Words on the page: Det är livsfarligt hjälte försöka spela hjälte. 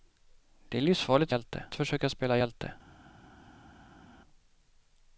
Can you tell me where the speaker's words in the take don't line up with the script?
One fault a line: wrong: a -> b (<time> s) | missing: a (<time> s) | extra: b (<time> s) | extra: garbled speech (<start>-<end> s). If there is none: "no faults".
no faults